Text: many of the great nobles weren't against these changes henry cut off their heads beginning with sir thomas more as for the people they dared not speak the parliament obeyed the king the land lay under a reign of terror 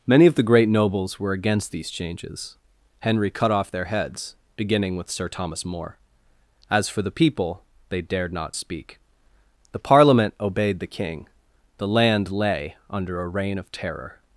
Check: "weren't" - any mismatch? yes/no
yes